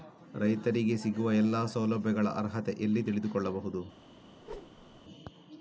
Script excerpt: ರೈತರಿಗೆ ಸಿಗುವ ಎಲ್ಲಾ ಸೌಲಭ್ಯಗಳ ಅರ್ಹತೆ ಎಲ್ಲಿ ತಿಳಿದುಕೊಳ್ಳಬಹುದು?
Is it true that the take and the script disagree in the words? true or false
false